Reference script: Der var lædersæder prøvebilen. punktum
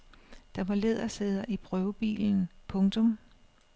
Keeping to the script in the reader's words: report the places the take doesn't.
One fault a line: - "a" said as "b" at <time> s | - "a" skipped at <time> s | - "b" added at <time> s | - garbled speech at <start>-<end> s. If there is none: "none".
- "i" added at 1.5 s